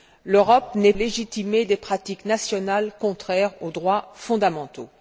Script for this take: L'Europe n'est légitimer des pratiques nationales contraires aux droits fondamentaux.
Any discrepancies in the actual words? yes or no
no